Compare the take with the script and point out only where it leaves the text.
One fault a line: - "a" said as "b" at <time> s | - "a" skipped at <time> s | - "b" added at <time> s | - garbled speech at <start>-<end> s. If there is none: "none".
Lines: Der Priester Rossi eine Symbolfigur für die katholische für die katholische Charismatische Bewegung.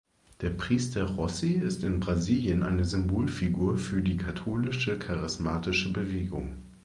- "eine Symbolfigur für die katholische" said as "ist in Brasilien eine Symbolfigur" at 1.5 s